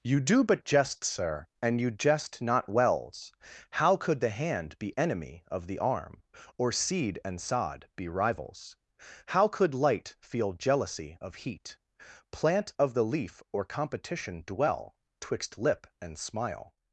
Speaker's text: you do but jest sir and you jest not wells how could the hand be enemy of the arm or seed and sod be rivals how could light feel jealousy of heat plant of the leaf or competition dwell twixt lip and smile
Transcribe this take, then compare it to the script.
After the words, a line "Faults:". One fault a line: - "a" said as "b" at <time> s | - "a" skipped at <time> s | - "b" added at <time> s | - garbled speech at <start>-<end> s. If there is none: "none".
you do but jest sir and you jest not wells how could the hand be enemy of the arm or seed and sod be rivals how could light feel jealousy of heat plant of the leaf or competition dwell twixt lip and smile
Faults:
none